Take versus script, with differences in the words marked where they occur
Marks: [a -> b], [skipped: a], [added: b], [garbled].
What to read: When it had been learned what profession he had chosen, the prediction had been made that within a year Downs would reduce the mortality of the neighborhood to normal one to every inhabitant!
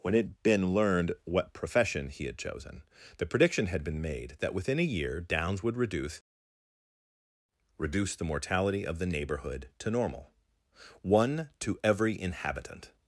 When it had been learned what profession he had chosen, the prediction had been made that within a year Downs would reduce [added: reduce] the mortality of the neighborhood to normal one to every inhabitant!